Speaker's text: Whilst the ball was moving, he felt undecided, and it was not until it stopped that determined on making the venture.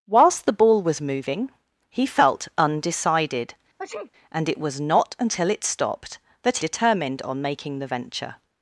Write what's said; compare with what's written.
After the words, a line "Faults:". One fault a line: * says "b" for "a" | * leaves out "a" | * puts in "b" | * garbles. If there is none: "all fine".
Whilst the ball was moving, he felt undecided, and it was not until it stopped that determined on making the venture.
Faults:
all fine